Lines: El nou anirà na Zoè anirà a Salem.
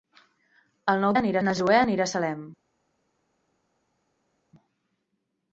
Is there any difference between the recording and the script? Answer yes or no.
no